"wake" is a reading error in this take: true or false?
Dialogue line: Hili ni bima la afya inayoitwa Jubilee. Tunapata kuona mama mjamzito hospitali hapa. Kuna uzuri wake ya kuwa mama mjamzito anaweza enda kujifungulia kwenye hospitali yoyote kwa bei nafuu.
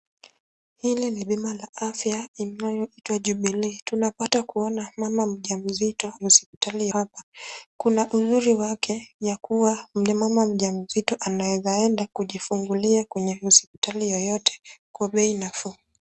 false